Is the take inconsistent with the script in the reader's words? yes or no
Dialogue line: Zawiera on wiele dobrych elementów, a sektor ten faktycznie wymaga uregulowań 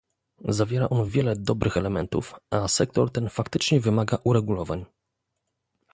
no